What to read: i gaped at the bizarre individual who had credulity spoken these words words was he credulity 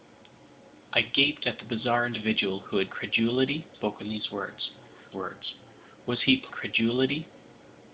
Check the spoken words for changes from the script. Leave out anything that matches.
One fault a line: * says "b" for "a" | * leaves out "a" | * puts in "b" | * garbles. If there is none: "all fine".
all fine